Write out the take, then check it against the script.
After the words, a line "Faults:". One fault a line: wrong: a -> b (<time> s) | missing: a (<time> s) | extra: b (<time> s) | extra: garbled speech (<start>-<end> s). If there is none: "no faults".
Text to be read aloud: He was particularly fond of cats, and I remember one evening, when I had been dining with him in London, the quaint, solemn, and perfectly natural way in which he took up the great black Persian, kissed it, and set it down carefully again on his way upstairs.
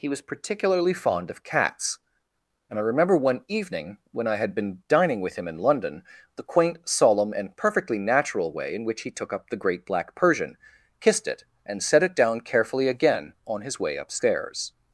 He was particularly fond of cats, and I remember one evening, when I had been dining with him in London, the quaint, solemn, and perfectly natural way in which he took up the great black Persian, kissed it, and set it down carefully again on his way upstairs.
Faults:
no faults